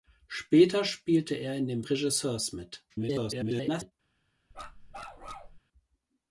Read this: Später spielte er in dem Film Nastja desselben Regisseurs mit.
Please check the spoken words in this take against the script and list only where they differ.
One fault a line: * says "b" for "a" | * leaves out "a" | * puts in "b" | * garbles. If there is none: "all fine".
* leaves out "Film Nastja desselben"
* garbles